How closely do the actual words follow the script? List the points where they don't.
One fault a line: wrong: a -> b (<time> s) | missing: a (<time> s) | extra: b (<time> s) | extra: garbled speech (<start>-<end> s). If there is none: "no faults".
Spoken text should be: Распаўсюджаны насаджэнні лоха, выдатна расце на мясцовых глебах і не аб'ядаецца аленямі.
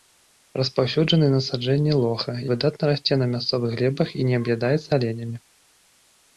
no faults